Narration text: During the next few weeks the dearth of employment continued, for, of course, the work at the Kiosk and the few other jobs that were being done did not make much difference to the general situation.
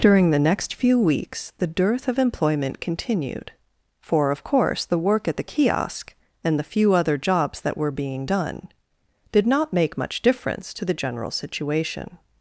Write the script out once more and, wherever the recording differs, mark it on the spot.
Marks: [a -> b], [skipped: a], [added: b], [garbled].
During the next few weeks the dearth of employment continued, for, of course, the work at the Kiosk and the few other jobs that were being done did not make much difference to the general situation.